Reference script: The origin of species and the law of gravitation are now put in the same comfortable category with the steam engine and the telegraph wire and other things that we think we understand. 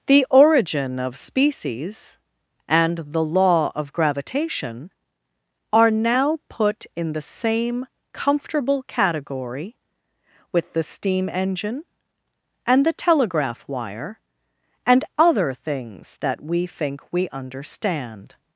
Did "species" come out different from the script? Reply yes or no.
no